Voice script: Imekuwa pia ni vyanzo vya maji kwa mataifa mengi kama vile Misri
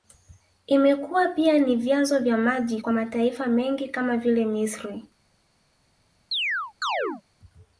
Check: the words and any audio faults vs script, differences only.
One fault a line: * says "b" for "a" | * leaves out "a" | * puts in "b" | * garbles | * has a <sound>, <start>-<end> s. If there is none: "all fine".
* has a chirp, 6.3-7.2 s